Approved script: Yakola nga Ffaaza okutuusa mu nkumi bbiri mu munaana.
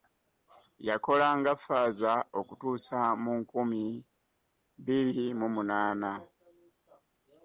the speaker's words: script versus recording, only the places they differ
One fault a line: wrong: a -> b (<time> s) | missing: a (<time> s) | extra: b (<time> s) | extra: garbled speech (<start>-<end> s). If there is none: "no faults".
no faults